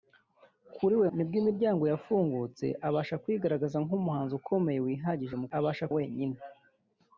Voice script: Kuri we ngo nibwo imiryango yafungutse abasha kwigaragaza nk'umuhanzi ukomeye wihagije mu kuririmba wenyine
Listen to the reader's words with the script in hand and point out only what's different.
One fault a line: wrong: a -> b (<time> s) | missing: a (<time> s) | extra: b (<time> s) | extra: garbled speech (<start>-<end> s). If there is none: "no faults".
missing: ngo (1.1 s)
wrong: kuririmba -> abasha (5.6 s)